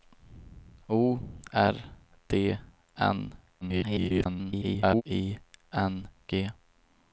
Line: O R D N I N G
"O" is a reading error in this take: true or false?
false